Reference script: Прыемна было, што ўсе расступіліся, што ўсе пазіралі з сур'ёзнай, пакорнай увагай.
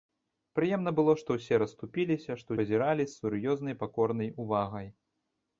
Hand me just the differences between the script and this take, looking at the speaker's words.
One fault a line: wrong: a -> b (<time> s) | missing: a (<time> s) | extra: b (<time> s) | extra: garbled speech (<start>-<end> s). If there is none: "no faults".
missing: ўсе (2.5 s)